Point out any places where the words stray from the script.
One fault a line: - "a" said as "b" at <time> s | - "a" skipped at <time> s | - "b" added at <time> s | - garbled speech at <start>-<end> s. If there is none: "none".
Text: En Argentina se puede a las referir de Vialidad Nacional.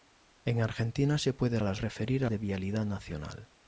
none